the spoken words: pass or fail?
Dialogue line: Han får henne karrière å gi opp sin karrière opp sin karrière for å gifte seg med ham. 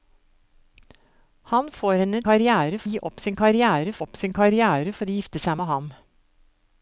pass